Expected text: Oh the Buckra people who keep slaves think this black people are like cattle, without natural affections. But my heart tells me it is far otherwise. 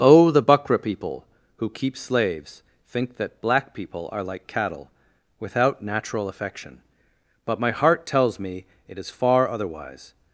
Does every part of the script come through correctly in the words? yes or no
no